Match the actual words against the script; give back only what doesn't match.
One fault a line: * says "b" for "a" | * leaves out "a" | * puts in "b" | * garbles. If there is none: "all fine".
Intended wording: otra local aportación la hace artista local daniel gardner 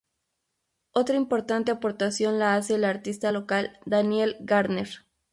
* says "importante" for "local"
* puts in "el"